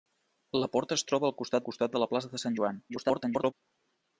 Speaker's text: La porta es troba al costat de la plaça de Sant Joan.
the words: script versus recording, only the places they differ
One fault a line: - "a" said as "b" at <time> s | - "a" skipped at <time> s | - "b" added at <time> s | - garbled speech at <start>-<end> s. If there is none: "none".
- "costat" added at 1.7 s
- garbled speech at 2.9-3.5 s